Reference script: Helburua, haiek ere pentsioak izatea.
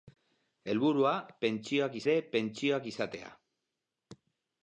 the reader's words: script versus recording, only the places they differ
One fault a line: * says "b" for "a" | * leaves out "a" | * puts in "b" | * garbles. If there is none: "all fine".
* says "pentsioak" for "haiek"